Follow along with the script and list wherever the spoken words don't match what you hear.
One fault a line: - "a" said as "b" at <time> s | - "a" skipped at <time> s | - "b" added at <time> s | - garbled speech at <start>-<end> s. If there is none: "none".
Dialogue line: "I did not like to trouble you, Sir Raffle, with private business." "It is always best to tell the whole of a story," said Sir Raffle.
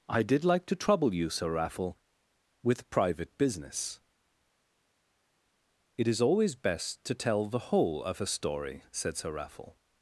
- "not" skipped at 0.4 s